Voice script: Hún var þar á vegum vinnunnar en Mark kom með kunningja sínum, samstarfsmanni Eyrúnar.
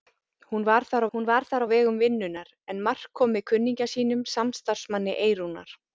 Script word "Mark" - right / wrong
right